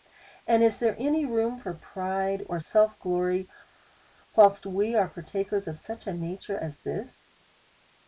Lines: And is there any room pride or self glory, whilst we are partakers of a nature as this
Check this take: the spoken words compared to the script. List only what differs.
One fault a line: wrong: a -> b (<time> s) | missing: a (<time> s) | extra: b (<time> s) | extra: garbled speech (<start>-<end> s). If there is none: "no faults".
extra: for (1.6 s)
extra: such (5.8 s)